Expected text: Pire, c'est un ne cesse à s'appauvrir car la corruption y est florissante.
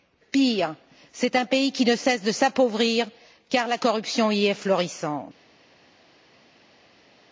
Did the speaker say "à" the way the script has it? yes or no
no